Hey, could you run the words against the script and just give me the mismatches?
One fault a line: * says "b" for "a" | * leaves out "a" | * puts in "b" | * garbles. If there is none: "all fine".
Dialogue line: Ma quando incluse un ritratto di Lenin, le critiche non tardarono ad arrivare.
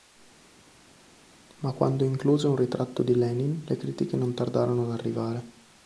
all fine